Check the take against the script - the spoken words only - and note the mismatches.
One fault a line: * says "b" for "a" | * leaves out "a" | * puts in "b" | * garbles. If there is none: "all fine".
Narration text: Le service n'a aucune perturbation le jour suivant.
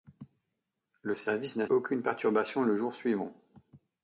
all fine